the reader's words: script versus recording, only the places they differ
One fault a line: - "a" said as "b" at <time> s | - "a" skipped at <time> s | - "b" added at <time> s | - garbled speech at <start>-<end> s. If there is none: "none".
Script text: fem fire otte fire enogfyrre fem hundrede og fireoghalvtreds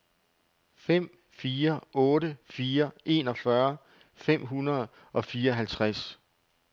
none